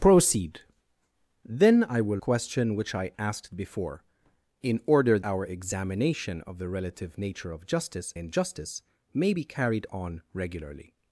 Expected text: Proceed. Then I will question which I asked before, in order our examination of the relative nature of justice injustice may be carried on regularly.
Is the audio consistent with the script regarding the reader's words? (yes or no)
yes